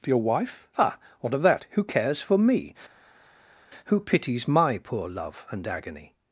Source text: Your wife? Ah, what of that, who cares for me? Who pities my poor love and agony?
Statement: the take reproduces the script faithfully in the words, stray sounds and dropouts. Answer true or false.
true